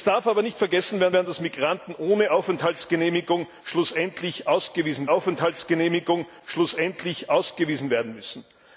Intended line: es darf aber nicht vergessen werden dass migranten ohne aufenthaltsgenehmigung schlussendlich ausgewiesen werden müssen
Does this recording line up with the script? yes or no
no